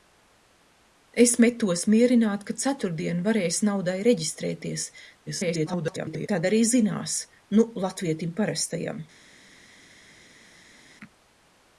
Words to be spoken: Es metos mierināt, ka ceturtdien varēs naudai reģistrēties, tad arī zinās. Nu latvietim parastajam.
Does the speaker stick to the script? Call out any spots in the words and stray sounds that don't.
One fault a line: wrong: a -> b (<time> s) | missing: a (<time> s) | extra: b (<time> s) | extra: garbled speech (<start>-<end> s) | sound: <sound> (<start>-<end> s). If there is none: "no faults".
extra: garbled speech (5.3-6.3 s)